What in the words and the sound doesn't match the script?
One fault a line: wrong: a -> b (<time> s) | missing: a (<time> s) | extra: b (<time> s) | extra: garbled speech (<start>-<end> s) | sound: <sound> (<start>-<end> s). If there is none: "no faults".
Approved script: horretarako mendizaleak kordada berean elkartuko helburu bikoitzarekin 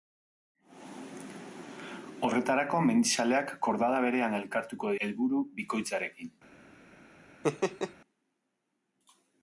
sound: laugh (7.4-7.9 s)